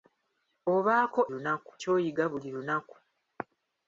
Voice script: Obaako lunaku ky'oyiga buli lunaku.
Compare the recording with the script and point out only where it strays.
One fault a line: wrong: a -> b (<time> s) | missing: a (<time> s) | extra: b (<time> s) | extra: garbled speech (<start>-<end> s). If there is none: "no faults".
no faults